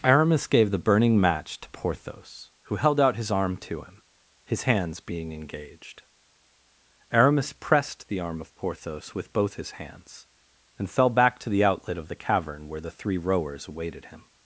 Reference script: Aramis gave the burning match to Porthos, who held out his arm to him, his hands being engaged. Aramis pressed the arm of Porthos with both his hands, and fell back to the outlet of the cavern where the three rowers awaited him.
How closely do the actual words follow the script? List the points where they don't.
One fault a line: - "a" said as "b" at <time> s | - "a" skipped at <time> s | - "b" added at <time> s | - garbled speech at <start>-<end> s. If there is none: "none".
none